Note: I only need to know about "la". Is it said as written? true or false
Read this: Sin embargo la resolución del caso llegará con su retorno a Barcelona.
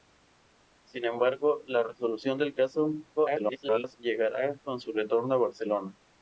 true